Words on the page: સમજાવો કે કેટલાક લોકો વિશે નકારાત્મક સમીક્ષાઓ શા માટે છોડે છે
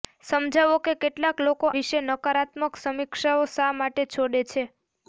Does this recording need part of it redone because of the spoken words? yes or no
no